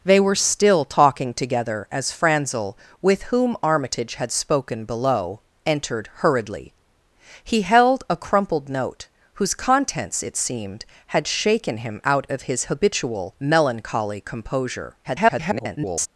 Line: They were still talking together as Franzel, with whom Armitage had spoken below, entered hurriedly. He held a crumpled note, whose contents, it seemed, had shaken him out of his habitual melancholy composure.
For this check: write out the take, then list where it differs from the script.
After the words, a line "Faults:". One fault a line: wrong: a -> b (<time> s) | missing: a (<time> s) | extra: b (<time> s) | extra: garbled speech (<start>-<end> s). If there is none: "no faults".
They were still talking together as Franzel, with whom Armitage had spoken below, entered hurriedly. He held a crumpled note, whose contents, it seemed, had shaken him out of his habitual melancholy composure. [garbled]
Faults:
extra: garbled speech (15.0-16.1 s)